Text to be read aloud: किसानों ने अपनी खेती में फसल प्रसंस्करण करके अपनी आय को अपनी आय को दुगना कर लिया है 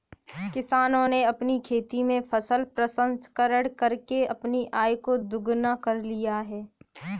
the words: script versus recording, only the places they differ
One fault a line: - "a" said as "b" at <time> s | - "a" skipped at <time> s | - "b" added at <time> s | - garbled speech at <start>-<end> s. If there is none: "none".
- "अपनी आय को" skipped at 5.2 s